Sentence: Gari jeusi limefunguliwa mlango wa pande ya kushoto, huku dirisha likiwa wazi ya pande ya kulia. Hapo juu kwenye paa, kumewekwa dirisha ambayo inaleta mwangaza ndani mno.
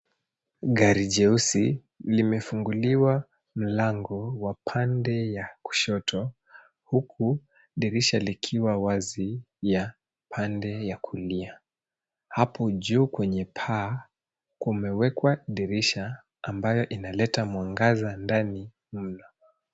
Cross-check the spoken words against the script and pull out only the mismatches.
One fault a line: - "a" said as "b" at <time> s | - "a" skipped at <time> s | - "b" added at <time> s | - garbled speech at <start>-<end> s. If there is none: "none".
none